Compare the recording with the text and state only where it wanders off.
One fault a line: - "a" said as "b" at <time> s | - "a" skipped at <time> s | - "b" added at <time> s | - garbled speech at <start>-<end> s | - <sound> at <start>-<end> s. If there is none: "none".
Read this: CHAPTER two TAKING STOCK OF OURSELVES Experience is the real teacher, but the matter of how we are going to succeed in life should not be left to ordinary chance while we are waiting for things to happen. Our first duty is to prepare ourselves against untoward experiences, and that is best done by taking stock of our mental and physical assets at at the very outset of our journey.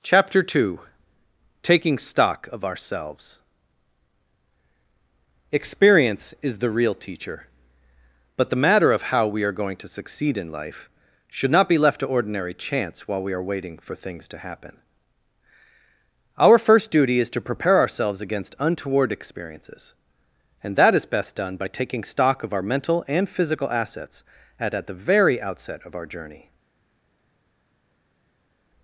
none